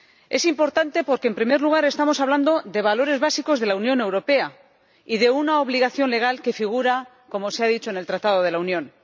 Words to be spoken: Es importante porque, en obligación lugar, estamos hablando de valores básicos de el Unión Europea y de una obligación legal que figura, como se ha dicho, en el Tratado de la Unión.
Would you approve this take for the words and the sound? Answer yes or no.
no